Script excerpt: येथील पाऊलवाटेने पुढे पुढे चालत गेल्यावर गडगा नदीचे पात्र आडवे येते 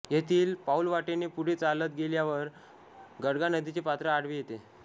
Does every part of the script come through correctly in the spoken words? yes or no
no